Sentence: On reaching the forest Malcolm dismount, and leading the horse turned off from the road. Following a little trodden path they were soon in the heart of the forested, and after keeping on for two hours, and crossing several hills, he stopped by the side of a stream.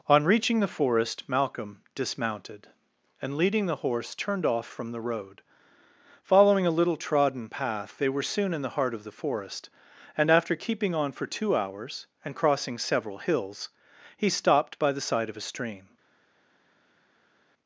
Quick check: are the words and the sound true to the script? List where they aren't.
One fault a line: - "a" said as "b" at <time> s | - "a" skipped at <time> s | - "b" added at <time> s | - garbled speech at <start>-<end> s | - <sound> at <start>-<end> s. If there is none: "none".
- "dismount" said as "dismounted" at 1.9 s
- "forested" said as "forest" at 9.1 s